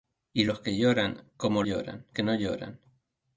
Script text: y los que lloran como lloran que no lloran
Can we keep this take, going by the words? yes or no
yes